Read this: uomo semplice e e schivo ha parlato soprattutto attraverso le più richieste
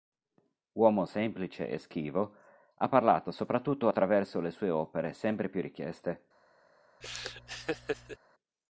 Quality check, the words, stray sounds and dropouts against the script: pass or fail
fail